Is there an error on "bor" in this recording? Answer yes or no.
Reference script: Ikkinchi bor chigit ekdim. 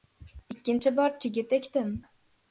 no